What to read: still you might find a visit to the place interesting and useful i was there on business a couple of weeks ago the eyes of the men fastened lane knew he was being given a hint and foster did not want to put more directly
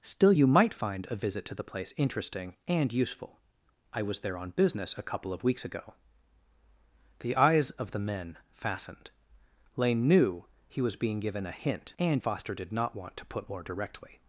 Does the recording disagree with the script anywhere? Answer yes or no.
no